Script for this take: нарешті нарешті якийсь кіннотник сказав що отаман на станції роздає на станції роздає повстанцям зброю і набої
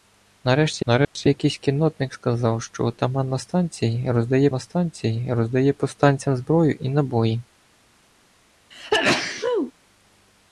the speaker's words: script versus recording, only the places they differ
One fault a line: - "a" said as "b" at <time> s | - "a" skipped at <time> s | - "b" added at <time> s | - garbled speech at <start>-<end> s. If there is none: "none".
none